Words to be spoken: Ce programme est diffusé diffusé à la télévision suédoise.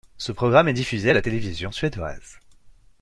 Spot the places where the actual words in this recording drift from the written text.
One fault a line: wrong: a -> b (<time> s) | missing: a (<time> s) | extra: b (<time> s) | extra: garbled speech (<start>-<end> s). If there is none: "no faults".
missing: diffusé (1.1 s)